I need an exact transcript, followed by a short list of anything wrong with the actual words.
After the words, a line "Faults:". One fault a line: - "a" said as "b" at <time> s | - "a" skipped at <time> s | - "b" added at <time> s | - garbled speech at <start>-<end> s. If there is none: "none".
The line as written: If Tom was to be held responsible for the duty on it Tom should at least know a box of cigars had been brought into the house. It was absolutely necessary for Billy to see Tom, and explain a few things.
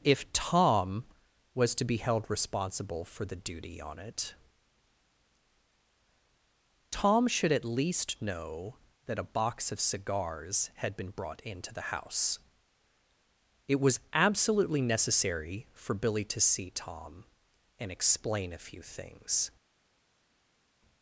If Tom was to be held responsible for the duty on it Tom should at least know that a box of cigars had been brought into the house. It was absolutely necessary for Billy to see Tom, and explain a few things.
Faults:
- "that" added at 9.1 s